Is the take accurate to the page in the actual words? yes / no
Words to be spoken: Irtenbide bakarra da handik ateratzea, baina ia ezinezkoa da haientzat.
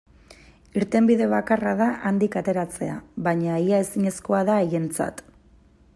yes